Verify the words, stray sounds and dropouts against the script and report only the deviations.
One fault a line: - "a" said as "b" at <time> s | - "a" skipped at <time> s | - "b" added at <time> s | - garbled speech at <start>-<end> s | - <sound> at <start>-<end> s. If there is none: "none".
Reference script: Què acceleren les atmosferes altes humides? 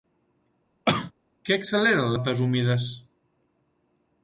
- cough at 0.9-1.1 s
- "les atmosferes" skipped at 2.1 s